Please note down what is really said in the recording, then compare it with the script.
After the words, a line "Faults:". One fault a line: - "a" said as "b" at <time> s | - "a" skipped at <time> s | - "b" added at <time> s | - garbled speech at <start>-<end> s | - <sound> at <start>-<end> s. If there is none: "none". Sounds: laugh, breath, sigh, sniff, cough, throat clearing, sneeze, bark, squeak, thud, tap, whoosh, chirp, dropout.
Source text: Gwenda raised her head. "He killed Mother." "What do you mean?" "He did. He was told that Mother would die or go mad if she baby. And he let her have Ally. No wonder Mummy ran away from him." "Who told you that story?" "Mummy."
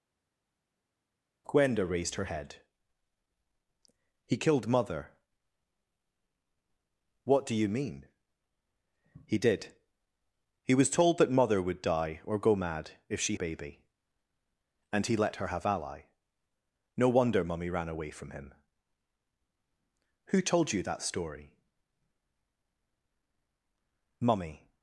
Gwenda raised her head. "He killed Mother." "What do you mean?" "He did. He was told that Mother would die or go mad if she baby. And he let her have Ally. No wonder Mummy ran away from him." "Who told you that story?" "Mummy."
Faults:
none